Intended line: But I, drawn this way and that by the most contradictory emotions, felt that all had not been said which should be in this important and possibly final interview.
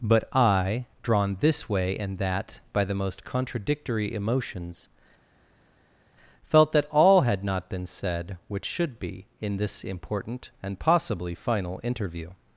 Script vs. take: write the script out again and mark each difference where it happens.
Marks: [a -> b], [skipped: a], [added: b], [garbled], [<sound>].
But I, drawn this way and that by the most contradictory emotions, felt that all had not been said which should be in this important and possibly final interview.